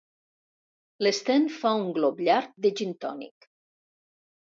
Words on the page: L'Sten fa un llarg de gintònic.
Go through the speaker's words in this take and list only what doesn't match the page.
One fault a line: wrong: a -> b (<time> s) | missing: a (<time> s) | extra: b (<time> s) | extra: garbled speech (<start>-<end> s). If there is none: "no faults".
extra: glop (2.0 s)